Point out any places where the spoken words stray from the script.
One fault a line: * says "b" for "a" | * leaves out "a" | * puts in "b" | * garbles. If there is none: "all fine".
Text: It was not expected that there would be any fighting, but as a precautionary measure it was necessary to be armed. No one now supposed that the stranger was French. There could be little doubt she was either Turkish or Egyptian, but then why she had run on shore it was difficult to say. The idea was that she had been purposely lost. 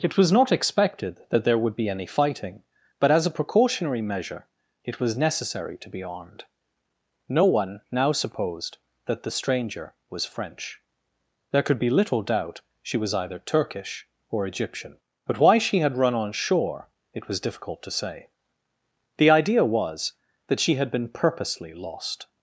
* leaves out "then"